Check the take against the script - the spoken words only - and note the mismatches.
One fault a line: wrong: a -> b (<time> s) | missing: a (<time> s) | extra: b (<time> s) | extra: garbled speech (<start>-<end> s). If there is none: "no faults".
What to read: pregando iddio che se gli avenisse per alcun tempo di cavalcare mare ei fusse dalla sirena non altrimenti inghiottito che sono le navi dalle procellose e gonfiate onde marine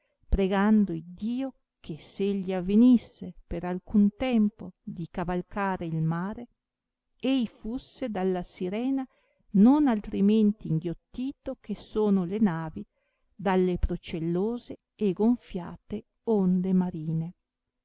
extra: il (5.9 s)